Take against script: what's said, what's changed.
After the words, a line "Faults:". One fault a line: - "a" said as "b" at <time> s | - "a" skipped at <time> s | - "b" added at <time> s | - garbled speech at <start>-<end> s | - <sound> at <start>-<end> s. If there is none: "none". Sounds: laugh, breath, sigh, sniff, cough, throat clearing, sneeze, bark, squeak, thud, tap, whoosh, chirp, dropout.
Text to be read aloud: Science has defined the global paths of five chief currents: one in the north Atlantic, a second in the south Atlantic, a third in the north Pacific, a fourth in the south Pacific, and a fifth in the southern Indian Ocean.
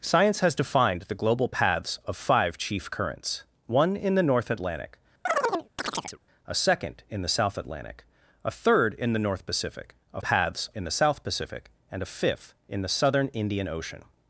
Science has defined the global paths of five chief currents: one in the north Atlantic, a second in the south Atlantic, a third in the north Pacific, a paths in the south Pacific, and a fifth in the southern Indian Ocean.
Faults:
- chirp at 5.3-6.2 s
- "fourth" said as "paths" at 10.2 s